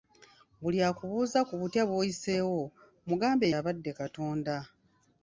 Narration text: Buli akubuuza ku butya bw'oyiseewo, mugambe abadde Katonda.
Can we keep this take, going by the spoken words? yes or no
yes